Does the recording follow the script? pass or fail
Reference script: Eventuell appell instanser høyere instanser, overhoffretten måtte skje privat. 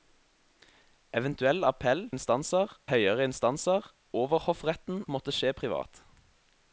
pass